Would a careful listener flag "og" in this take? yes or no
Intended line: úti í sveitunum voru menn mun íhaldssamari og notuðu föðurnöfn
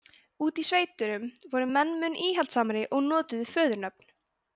no